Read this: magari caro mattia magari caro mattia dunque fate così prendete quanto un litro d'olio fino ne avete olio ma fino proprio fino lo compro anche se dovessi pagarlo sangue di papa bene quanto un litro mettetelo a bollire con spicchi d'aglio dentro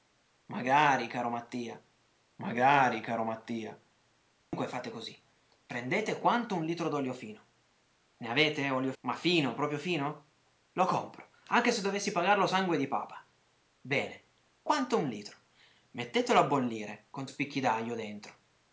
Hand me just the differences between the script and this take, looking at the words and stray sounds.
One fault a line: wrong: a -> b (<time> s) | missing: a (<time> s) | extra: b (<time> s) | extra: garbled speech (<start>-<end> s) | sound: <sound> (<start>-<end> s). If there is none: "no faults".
sound: dropout (4.4-4.5 s)